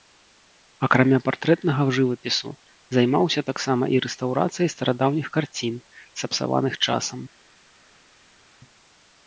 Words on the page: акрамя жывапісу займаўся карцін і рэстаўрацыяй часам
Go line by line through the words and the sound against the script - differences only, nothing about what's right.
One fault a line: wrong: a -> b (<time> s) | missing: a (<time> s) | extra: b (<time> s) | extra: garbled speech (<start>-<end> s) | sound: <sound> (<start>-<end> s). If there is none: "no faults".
extra: партрэтнага (1.3 s)
wrong: карцін -> таксама (3.5 s)
extra: старадаўніх карцін сапсаваных (4.8 s)